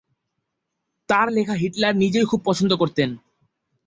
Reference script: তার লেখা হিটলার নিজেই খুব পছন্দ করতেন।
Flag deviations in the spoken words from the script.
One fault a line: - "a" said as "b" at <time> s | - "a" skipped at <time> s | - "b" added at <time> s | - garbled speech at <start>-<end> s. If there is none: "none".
none